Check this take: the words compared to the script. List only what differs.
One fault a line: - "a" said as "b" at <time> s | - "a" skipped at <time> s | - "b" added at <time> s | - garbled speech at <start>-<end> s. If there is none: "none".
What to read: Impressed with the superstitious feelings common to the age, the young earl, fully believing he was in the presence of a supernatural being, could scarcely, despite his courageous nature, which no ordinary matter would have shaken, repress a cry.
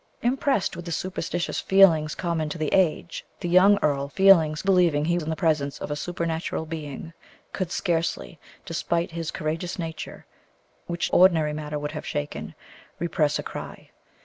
- "fully" said as "feelings" at 4.1 s
- "was" skipped at 5.2 s
- "no" skipped at 11.1 s